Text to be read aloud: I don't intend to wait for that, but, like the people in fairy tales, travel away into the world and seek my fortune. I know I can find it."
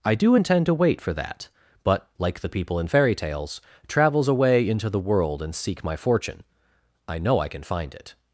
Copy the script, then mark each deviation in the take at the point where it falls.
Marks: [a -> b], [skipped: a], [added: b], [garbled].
I [don't -> do] intend to wait for that, but, like the people in fairy tales, [travel -> travels] away into the world and seek my fortune. I know I can find it."